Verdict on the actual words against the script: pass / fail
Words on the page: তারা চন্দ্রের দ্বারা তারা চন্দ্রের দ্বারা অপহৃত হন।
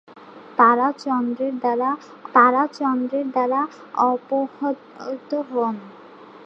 pass